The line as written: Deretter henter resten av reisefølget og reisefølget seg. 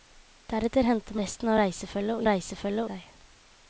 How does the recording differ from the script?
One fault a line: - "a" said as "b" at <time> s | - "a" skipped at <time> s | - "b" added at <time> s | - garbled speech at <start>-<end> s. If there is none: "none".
none